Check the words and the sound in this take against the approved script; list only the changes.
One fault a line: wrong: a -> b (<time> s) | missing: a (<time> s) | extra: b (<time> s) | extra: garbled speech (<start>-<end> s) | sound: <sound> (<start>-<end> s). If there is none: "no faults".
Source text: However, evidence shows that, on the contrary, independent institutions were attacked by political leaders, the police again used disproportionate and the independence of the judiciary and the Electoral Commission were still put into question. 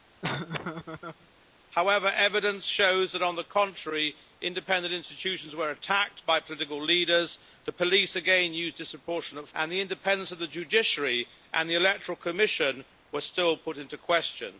sound: laugh (0.2-1.3 s)